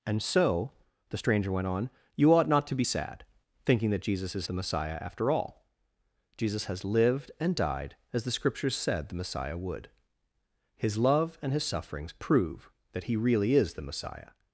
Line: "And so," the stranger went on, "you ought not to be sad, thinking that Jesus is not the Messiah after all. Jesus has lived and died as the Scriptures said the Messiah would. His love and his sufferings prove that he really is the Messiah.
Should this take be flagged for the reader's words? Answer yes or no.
yes